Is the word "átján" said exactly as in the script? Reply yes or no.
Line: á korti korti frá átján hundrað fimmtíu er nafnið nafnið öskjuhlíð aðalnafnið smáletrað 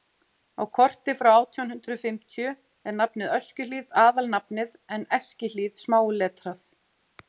yes